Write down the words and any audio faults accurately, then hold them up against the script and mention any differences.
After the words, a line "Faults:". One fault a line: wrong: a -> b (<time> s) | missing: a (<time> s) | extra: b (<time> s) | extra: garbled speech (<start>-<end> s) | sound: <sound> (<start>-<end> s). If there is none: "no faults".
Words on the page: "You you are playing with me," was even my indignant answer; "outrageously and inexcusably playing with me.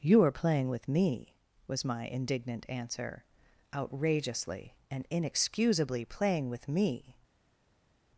"You are playing with me," was my indignant answer; "outrageously and inexcusably playing with me.
Faults:
missing: you (0.2 s)
missing: even (1.9 s)